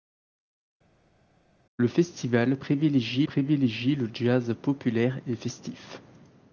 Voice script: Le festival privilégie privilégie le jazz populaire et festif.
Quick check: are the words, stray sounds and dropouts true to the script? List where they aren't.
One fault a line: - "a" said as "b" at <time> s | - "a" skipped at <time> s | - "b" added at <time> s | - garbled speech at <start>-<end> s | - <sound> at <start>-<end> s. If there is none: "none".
none